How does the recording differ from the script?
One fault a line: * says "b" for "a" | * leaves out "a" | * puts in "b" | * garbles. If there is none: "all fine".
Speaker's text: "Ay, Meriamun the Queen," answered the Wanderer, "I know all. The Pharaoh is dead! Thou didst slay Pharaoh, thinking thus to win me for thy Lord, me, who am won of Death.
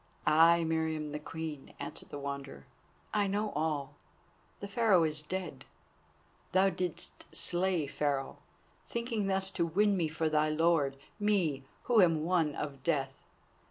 all fine